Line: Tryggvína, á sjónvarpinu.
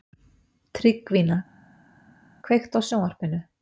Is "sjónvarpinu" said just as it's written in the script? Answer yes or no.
yes